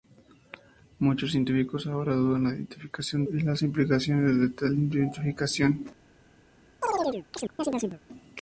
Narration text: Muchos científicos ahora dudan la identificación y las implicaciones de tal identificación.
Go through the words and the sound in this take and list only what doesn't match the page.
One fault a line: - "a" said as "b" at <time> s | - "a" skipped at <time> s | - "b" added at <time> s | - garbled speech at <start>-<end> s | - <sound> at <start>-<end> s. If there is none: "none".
- chirp at 6.8-8.0 s